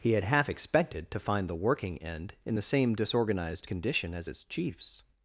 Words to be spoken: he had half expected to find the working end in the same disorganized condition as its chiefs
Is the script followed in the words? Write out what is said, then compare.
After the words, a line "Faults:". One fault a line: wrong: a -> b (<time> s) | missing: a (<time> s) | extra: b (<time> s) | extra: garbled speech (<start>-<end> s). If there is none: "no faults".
he had half expected to find the working end in the same disorganized condition as its chiefs
Faults:
no faults